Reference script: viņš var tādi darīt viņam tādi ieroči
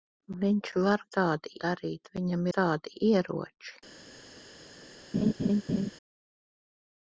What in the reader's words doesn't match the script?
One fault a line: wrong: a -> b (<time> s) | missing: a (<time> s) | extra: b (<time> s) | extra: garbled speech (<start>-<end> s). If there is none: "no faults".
no faults